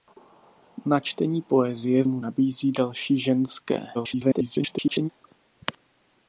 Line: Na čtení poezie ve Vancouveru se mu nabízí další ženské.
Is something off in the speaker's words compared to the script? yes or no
yes